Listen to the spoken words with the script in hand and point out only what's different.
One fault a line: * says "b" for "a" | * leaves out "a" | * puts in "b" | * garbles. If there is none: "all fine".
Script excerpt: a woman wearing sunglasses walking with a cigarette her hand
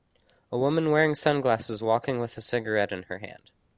* puts in "in"